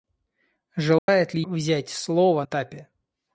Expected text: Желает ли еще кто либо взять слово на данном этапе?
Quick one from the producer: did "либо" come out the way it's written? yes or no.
no